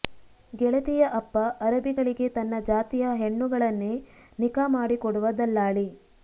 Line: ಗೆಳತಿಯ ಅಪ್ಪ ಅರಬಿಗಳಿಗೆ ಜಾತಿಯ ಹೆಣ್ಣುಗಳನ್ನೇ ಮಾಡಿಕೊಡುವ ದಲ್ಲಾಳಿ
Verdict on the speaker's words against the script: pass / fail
fail